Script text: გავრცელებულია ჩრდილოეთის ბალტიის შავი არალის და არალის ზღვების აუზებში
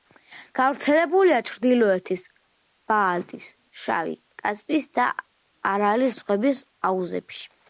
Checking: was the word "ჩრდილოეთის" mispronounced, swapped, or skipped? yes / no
no